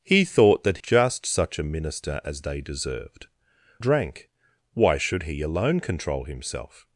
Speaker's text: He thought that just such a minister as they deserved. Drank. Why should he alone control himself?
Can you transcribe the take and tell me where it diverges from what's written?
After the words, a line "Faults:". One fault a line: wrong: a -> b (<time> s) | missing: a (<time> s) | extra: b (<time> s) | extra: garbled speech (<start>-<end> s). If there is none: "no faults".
He thought that just such a minister as they deserved. Drank. Why should he alone control himself?
Faults:
no faults